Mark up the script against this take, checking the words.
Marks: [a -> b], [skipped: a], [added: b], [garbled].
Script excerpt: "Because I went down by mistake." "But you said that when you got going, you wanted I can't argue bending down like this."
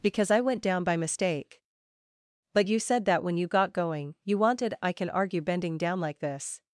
"Because I went down by mistake." "But you said that when you got going, you wanted I [can't -> can] argue bending down like this."